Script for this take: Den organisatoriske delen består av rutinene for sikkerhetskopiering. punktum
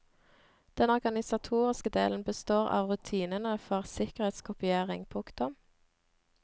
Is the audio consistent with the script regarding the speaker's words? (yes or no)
yes